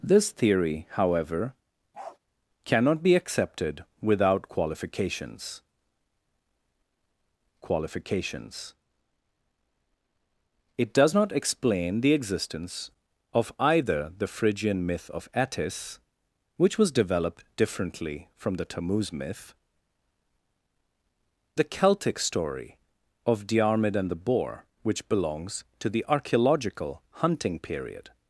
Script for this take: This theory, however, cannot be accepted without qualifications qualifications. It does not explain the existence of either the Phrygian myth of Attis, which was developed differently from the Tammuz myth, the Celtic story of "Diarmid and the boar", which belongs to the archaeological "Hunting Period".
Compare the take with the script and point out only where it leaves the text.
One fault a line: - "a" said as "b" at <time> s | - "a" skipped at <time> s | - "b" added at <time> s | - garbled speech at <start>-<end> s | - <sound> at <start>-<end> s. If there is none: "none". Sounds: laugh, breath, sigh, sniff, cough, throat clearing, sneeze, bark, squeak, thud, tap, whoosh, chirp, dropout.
- bark at 1.9-2.2 s